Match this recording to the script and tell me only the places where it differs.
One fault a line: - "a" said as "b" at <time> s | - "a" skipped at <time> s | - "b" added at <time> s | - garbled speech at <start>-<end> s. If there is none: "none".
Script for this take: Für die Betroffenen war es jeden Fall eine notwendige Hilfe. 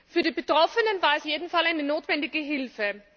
none